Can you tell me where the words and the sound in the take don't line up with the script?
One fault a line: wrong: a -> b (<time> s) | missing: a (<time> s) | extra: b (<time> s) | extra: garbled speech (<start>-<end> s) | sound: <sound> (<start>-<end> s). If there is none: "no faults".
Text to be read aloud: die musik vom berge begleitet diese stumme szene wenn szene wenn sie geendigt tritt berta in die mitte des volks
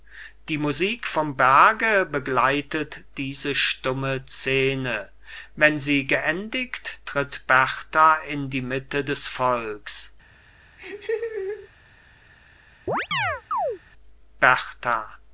missing: szene wenn (5.8 s)
sound: laugh (10.8-11.7 s)
sound: chirp (12.9-13.8 s)